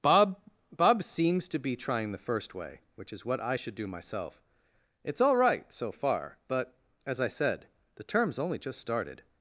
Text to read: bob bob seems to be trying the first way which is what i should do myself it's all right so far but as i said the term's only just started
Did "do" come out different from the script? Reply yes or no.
no